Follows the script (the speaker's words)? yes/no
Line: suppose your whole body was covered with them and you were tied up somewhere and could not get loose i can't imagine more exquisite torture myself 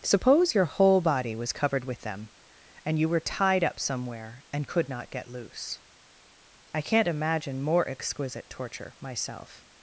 yes